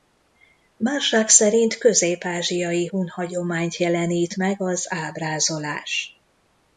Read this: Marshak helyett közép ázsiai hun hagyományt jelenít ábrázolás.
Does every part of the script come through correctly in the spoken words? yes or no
no